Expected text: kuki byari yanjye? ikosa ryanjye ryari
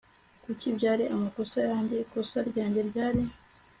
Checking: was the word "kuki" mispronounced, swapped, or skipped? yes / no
no